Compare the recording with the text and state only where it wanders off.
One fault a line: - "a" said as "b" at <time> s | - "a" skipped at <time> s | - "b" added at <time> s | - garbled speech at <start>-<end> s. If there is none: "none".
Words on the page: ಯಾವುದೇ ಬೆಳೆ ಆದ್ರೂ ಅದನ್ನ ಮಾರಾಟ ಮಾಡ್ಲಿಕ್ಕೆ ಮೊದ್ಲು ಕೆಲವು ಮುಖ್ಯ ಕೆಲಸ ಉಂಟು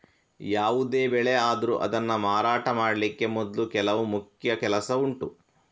none